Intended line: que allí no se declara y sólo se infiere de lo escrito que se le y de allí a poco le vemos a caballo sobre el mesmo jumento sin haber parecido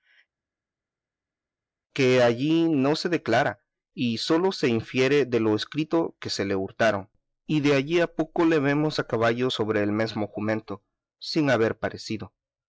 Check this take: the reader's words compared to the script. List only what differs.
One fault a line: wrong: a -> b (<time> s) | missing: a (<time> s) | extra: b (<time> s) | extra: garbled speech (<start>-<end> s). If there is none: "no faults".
extra: hurtaron (6.6 s)